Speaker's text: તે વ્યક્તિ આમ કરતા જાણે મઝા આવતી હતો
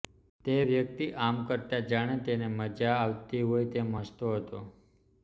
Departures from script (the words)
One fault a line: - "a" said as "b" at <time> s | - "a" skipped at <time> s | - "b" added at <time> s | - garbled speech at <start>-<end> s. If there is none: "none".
- "તેને" added at 2.2 s
- "હોય તેમ હસતો" added at 3.5 s